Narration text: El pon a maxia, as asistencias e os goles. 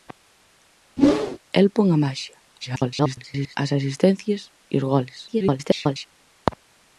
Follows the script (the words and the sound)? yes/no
no